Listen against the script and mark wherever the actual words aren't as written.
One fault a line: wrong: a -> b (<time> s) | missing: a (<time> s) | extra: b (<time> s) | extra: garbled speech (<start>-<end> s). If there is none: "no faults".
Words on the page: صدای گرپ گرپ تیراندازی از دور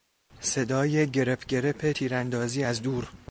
no faults